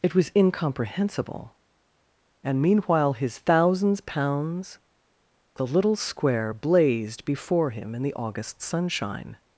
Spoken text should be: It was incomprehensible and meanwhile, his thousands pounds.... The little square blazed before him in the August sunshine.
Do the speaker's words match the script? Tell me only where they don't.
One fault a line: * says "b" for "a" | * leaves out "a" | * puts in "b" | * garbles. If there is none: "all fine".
all fine